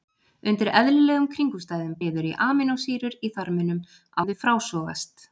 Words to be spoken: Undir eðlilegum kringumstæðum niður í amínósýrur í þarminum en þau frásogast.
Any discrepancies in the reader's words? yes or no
no